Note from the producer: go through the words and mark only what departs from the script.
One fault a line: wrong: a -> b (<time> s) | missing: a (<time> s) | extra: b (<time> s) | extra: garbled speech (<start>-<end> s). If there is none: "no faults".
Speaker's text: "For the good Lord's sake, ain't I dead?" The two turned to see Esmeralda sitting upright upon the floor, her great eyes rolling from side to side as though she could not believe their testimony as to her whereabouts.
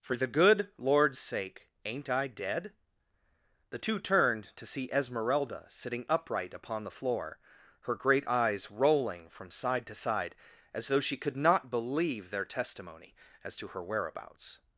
no faults